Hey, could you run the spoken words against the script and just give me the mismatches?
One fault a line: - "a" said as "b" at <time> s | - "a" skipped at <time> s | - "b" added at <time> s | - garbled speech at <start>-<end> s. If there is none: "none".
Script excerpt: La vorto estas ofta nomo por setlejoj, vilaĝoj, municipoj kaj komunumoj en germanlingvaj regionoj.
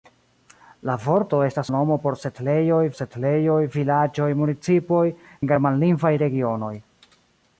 - "ofta" skipped at 1.7 s
- "setlejoj" added at 3.0 s
- "kaj komunumoj" skipped at 5.0 s